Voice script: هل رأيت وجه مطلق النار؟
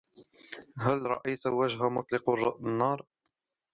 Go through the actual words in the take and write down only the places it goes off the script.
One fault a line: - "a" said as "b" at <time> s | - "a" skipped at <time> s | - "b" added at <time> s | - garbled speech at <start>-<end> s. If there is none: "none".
none